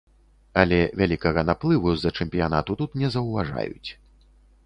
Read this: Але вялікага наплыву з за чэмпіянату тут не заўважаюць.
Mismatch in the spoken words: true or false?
false